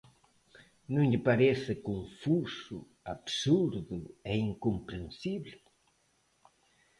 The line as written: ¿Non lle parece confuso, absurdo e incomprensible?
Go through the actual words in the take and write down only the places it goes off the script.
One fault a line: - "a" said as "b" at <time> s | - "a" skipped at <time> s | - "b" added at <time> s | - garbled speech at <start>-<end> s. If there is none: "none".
none